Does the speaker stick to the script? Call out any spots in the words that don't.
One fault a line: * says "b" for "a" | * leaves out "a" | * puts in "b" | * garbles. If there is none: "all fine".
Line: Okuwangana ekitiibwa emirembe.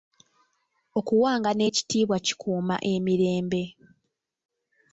* puts in "kikuuma"